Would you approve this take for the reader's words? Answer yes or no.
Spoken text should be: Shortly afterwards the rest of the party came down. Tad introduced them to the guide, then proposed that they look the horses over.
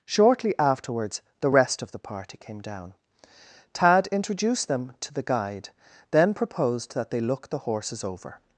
yes